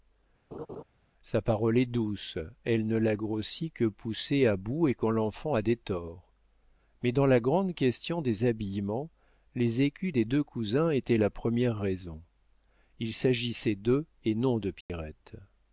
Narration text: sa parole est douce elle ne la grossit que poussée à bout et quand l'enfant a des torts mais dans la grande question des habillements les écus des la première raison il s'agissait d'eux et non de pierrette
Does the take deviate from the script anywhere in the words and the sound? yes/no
yes